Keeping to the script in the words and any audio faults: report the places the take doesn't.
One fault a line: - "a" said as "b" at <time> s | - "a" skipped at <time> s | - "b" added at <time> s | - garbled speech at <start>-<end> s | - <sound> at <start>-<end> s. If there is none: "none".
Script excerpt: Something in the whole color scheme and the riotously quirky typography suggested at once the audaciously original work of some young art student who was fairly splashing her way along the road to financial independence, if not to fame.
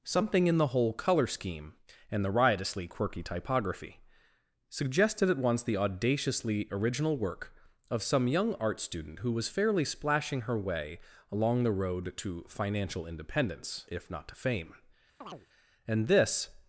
- chirp at 15.2-15.5 s
- "And this" added at 15.9 s